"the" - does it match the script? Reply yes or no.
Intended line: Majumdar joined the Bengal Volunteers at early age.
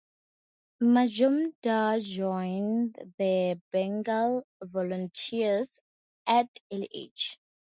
yes